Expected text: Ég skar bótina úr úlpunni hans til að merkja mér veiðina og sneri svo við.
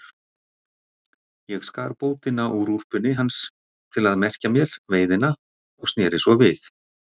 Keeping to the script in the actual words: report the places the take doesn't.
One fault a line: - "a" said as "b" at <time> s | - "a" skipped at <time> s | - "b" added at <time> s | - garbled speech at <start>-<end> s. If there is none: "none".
none